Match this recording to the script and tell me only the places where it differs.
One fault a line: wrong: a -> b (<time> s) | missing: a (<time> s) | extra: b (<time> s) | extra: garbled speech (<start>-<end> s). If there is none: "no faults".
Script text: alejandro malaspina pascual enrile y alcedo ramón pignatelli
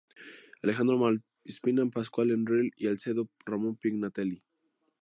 no faults